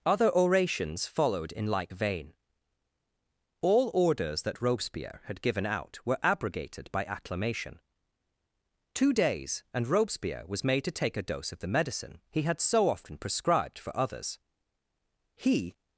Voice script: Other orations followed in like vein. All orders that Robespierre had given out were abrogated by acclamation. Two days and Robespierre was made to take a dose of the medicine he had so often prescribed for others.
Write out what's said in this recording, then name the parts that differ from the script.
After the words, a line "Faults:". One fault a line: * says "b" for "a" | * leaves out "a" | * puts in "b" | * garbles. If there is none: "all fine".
Other orations followed in like vein. All orders that Robespierre had given out were abrogated by acclamation. Two days and Robespierre was made to take a dose of the medicine he had so often prescribed for others. He
Faults:
* puts in "He"